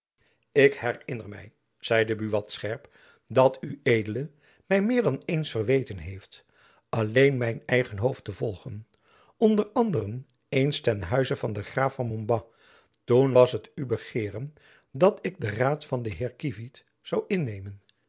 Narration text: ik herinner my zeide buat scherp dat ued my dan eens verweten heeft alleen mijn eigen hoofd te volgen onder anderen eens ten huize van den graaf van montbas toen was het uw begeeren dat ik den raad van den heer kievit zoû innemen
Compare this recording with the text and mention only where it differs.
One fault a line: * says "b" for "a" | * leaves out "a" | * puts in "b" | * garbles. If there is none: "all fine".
* puts in "meer"